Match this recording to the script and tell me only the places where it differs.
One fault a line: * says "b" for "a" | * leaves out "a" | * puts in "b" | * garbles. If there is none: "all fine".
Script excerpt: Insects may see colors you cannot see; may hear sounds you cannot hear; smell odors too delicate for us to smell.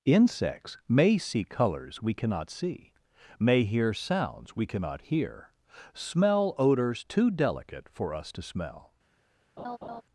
* says "we" for "you"
* says "we" for "you"